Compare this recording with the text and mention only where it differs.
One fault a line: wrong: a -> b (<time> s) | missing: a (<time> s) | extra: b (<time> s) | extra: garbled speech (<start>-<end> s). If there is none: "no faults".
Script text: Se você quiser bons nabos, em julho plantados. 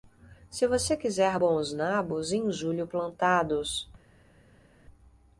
no faults